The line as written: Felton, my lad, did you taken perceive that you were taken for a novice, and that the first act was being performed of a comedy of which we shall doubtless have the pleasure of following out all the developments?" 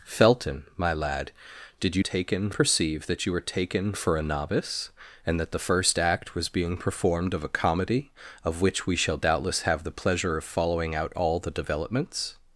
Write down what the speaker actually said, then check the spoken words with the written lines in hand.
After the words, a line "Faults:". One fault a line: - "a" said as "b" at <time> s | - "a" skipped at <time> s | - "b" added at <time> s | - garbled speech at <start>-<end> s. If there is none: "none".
Felton, my lad, did you taken perceive that you were taken for a novice, and that the first act was being performed of a comedy of which we shall doubtless have the pleasure of following out all the developments?"
Faults:
none